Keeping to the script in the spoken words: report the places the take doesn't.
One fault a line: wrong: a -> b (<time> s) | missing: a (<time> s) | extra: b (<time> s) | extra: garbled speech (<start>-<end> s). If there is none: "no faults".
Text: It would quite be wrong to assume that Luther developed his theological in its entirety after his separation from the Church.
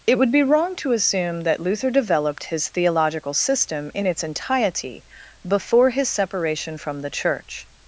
missing: quite (0.3 s)
extra: system (3.4 s)
wrong: after -> before (5.4 s)